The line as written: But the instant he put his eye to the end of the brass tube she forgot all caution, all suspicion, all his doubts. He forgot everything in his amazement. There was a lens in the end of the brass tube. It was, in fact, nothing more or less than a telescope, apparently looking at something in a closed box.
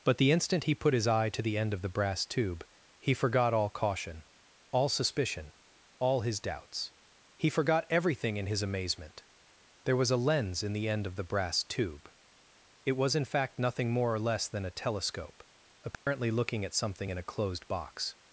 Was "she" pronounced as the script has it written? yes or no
no